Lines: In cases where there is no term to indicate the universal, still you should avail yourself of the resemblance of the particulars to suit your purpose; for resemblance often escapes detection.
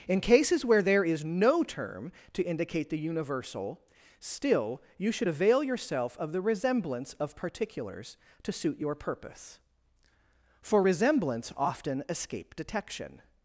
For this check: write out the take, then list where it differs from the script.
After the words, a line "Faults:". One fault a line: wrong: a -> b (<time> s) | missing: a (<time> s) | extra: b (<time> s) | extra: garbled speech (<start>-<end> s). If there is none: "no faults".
In cases where there is no term to indicate the universal, still you should avail yourself of the resemblance of particulars to suit your purpose; for resemblance often escape detection.
Faults:
missing: the (7.3 s)
wrong: escapes -> escape (12.1 s)